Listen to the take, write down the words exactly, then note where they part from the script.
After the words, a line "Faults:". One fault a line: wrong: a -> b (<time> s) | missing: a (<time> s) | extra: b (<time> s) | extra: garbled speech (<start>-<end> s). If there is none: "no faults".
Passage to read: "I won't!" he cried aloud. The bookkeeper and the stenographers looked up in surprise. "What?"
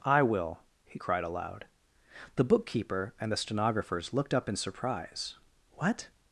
"I will!" he cried aloud. The bookkeeper and the stenographers looked up in surprise. "What?"
Faults:
wrong: won't -> will (0.2 s)